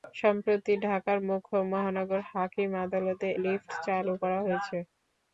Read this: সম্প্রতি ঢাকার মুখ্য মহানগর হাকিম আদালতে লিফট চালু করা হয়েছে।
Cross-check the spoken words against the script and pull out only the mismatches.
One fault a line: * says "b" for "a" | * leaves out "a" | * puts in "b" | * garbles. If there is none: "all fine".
all fine